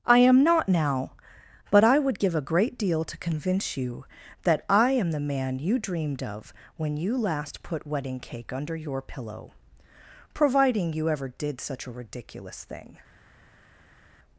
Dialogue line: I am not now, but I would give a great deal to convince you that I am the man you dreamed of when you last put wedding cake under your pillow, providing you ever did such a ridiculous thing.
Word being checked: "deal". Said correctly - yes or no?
yes